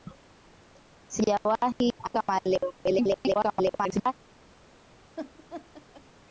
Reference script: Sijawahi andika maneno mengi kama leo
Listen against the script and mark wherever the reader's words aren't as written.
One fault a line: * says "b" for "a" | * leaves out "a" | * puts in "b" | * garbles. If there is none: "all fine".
* leaves out "andika maneno mengi"
* garbles